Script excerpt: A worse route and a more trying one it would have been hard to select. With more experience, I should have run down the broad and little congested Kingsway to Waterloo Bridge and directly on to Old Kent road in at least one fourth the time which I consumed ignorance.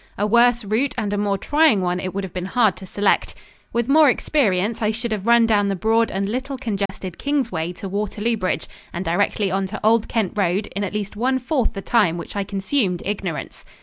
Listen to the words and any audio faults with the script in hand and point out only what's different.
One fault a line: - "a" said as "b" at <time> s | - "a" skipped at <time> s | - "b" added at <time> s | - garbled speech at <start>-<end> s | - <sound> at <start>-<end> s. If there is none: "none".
- dropout at 6.9-6.9 s